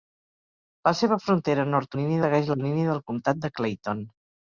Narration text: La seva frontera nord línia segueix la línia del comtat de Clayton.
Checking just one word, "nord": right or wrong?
right